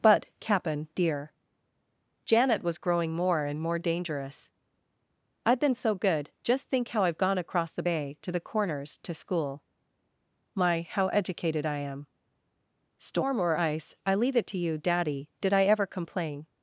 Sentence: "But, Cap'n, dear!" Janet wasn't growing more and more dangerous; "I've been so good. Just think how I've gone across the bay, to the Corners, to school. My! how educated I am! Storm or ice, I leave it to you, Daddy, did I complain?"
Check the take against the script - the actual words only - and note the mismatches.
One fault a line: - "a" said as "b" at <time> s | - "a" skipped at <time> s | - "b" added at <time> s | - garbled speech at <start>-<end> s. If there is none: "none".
- "wasn't" said as "was" at 2.6 s
- "ever" added at 15.6 s